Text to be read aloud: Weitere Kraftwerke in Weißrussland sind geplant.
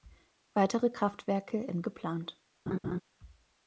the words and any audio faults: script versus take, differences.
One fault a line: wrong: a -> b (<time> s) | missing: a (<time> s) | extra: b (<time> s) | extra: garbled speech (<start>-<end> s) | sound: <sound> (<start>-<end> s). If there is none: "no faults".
missing: Weißrussland sind (1.9 s)
sound: laugh (2.7-3.0 s)